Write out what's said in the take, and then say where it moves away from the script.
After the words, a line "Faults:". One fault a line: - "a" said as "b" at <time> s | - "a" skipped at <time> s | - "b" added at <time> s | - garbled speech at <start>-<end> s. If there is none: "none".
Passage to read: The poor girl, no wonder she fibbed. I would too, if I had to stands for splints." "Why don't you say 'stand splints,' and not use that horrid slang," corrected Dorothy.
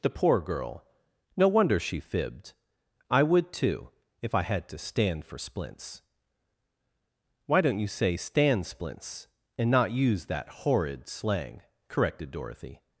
The poor girl, no wonder she fibbed. I would too, if I had to stand for splints." "Why don't you say 'stand splints,' and not use that horrid slang," corrected Dorothy.
Faults:
- "stands" said as "stand" at 4.8 s